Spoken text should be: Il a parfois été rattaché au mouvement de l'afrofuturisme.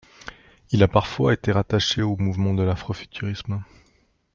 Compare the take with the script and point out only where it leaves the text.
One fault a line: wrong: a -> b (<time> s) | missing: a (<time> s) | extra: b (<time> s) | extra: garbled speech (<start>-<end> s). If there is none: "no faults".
no faults